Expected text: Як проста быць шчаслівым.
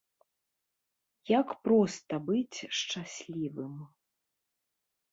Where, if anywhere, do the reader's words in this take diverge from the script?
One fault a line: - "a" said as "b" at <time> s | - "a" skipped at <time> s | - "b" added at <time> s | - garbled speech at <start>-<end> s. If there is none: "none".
none